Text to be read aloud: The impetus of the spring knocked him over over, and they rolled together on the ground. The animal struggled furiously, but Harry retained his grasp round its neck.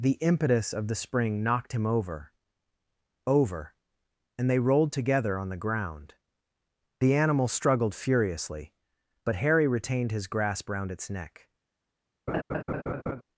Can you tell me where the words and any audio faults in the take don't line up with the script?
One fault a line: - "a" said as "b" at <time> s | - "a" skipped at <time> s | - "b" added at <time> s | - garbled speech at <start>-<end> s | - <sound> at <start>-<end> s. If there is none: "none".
- laugh at 12.3-13.2 s